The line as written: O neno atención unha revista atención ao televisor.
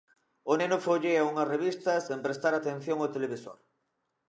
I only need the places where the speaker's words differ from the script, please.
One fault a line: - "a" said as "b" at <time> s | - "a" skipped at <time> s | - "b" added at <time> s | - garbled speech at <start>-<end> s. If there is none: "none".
- "atención" said as "follea" at 0.9 s
- "sen prestar" added at 2.1 s